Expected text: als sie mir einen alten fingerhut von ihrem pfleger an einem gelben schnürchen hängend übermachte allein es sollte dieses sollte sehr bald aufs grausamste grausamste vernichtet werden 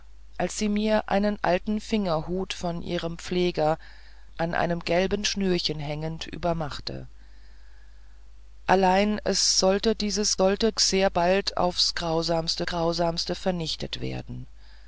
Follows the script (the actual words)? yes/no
yes